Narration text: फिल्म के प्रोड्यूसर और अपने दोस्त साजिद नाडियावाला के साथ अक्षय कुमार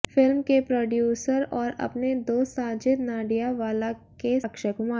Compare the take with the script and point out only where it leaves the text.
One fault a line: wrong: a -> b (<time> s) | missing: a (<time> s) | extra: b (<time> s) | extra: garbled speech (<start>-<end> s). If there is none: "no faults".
missing: साथ (4.4 s)